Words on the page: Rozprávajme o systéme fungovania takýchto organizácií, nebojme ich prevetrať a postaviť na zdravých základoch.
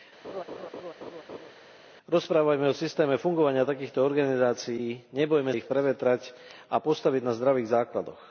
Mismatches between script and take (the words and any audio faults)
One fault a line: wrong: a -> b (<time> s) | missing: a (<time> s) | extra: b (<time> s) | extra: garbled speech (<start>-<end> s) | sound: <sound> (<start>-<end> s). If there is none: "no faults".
sound: laugh (0.2-1.5 s)